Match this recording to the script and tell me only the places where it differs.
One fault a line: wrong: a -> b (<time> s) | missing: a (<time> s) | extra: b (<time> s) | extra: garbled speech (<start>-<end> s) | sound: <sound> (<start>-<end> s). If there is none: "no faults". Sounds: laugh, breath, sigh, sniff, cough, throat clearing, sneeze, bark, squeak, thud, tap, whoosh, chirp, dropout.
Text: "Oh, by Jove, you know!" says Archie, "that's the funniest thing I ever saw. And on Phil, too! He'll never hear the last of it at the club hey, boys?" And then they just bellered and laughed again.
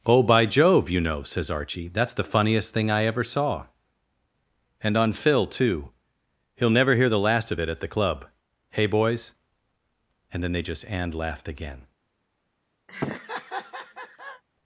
missing: bellered (10.8 s)
sound: laugh (12.9-14.4 s)